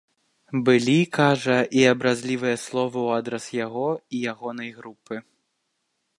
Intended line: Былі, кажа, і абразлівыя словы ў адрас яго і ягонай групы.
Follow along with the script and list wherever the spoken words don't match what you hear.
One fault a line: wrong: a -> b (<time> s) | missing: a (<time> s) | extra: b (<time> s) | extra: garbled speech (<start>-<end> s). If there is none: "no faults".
no faults